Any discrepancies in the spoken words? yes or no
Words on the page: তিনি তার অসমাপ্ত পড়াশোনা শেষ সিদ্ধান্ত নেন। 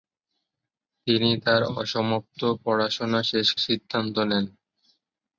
no